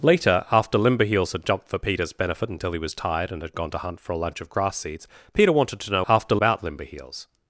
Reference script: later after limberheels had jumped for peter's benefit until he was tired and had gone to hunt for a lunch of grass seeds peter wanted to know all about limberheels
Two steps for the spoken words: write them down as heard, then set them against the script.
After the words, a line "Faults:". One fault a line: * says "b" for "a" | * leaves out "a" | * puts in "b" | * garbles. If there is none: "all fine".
later after limberheels had jumped for peter's benefit until he was tired and had gone to hunt for a lunch of grass seeds peter wanted to know after about limberheels
Faults:
* says "after" for "all"